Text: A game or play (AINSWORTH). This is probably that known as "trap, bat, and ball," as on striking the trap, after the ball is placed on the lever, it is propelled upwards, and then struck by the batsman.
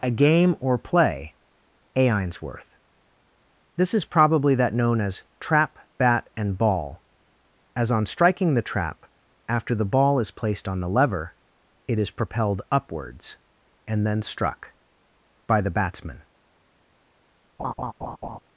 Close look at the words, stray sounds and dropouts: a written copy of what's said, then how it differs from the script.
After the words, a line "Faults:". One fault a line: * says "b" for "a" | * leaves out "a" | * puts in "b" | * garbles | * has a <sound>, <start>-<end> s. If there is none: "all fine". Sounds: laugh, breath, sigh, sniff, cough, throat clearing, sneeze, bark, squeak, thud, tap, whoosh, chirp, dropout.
A game or play (AINSWORTH). This is probably that known as "trap, bat, and ball," as on striking the trap, after the ball is placed on the lever, it is propelled upwards, and then struck by the batsman.
Faults:
* has a laugh, 17.6-18.4 s